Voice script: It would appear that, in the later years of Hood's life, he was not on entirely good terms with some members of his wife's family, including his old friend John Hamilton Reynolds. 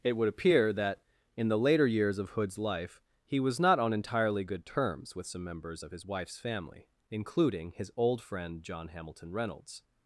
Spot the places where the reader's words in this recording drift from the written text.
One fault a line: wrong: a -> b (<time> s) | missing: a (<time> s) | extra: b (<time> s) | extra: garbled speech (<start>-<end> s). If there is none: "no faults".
no faults